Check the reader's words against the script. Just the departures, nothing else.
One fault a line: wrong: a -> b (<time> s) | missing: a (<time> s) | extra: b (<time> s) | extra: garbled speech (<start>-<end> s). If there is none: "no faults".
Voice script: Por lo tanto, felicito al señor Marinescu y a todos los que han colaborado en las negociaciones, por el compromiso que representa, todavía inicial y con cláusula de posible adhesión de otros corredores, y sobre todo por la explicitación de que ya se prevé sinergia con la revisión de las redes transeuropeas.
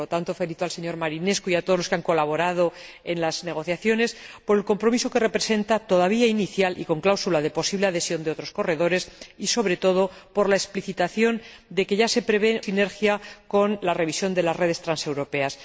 no faults